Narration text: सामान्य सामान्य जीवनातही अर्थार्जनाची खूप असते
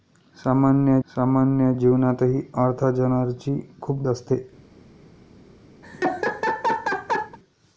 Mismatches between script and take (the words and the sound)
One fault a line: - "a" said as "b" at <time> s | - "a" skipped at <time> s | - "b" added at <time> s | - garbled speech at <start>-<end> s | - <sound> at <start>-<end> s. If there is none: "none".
- laugh at 5.8-7.4 s